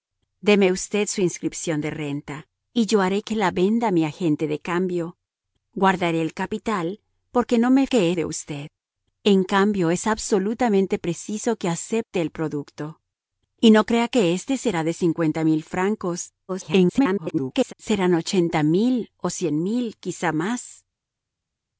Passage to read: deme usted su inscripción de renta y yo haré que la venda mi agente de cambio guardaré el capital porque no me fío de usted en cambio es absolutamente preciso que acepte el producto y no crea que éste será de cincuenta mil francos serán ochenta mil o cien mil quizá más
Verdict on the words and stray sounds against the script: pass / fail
fail